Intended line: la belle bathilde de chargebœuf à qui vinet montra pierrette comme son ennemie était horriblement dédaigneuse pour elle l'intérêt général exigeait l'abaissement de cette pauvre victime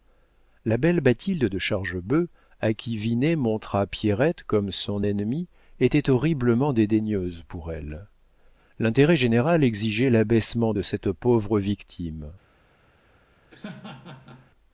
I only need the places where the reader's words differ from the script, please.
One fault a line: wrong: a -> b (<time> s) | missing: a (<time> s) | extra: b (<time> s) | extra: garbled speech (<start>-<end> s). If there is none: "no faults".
no faults